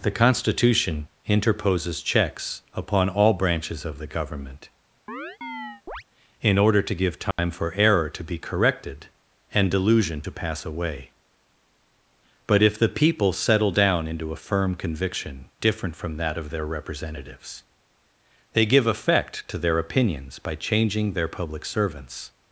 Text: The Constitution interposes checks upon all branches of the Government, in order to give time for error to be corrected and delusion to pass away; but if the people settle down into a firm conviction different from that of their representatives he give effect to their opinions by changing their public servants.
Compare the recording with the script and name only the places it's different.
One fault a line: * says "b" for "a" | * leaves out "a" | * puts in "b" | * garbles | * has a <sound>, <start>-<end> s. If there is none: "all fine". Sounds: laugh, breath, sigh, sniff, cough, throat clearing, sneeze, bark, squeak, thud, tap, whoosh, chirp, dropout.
* has a chirp, 5.1-6.0 s
* has a dropout, 7.3-7.4 s
* says "they" for "he"